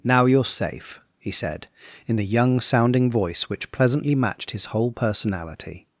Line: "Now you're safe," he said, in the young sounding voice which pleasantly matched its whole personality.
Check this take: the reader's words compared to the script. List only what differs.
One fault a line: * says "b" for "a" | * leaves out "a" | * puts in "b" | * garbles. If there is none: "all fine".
* says "his" for "its"